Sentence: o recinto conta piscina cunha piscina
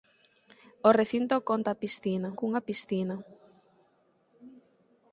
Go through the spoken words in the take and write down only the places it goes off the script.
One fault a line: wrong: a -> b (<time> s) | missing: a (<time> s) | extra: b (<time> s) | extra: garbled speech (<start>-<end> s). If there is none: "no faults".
no faults